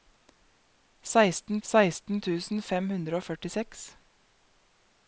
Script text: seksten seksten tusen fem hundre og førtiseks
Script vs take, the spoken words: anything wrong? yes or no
no